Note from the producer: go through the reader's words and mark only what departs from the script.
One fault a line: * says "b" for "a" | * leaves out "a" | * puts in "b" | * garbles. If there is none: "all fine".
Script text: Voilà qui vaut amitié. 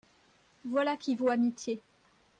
all fine